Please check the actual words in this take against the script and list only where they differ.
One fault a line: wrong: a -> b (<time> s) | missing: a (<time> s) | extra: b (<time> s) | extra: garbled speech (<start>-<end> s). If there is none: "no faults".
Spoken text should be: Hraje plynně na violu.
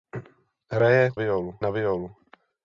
wrong: plynně -> violu (1.1 s)